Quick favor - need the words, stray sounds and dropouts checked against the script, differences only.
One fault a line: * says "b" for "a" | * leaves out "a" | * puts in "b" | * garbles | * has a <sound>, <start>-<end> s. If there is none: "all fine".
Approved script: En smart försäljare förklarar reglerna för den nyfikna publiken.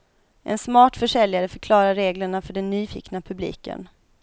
all fine